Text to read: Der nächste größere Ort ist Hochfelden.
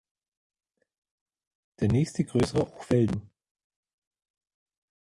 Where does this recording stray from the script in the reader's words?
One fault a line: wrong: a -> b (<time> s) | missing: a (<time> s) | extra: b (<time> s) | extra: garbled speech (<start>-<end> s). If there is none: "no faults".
missing: Ort ist (2.7 s)